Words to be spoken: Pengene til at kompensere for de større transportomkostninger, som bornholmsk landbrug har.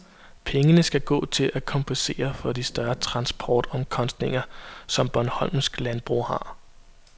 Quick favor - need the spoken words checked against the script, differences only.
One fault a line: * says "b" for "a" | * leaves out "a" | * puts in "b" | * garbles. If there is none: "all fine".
* puts in "skal gå"